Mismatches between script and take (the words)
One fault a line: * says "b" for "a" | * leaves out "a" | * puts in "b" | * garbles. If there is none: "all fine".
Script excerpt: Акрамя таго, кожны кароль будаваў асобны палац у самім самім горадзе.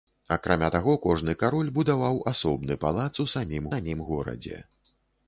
all fine